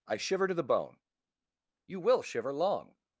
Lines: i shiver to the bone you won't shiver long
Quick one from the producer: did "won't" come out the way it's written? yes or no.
no